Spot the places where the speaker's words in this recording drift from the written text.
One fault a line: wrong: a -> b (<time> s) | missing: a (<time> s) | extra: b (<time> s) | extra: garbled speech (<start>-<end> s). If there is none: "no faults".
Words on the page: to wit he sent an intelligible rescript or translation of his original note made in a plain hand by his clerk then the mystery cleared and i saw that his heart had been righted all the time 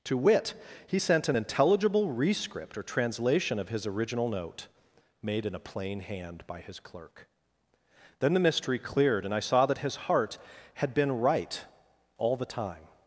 wrong: righted -> right (11.2 s)